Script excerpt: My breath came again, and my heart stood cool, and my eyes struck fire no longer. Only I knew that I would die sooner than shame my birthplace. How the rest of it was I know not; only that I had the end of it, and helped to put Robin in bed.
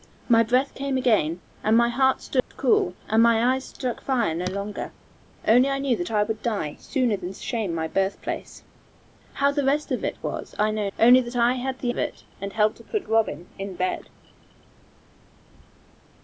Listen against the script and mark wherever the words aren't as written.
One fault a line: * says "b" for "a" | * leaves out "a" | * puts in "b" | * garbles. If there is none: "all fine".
* leaves out "not"
* leaves out "end"